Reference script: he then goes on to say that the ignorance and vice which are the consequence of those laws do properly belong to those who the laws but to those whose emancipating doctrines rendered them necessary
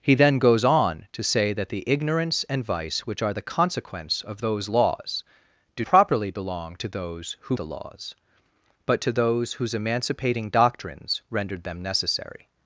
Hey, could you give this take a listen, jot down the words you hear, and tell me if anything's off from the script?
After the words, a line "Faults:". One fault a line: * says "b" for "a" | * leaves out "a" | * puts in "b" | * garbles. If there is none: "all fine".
he then goes on to say that the ignorance and vice which are the consequence of those laws do properly belong to those who the laws but to those whose emancipating doctrines rendered them necessary
Faults:
all fine